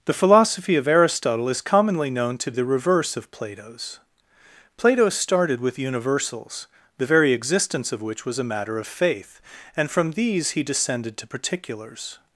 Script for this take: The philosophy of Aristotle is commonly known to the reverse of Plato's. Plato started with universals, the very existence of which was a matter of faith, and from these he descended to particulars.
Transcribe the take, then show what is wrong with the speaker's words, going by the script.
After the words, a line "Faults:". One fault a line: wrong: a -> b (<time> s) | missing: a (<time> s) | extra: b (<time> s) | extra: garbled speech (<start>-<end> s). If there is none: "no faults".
The philosophy of Aristotle is commonly known to the reverse of Plato's. Plato started with universals, the very existence of which was a matter of faith, and from these he descended to particulars.
Faults:
no faults